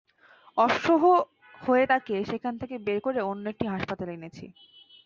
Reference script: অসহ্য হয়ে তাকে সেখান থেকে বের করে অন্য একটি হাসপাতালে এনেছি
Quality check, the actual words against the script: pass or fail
pass